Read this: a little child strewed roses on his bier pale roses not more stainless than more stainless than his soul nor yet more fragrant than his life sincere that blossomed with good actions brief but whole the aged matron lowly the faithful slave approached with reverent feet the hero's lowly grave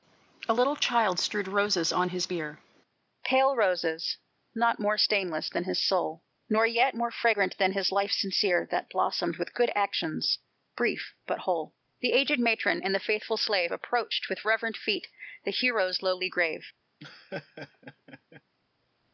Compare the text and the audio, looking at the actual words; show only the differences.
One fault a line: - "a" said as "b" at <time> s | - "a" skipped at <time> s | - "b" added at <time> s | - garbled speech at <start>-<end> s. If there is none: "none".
- "more stainless than" skipped at 5.6 s
- "lowly" said as "and" at 12.8 s